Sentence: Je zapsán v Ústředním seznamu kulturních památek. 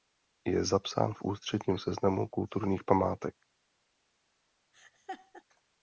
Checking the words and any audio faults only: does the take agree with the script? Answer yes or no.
no